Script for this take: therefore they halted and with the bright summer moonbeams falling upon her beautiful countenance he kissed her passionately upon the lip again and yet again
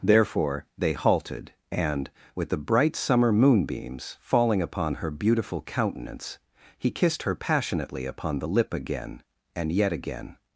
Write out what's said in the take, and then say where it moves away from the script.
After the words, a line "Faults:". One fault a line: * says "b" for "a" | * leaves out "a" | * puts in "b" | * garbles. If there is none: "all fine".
therefore they halted and with the bright summer moonbeams falling upon her beautiful countenance he kissed her passionately upon the lip again and yet again
Faults:
all fine